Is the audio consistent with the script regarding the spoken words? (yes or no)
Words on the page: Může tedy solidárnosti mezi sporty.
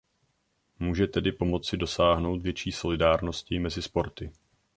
no